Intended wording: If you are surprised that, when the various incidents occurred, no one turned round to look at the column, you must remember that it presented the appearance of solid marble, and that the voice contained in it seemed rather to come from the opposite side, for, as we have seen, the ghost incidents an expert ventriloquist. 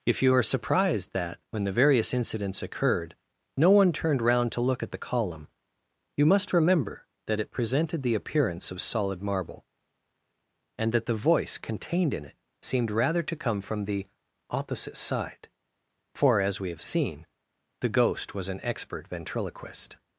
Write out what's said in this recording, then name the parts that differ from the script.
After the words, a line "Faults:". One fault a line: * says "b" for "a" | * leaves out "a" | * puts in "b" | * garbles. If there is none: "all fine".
If you are surprised that, when the various incidents occurred, no one turned round to look at the column, you must remember that it presented the appearance of solid marble, and that the voice contained in it seemed rather to come from the opposite side, for, as we have seen, the ghost was an expert ventriloquist.
Faults:
* says "was" for "incidents"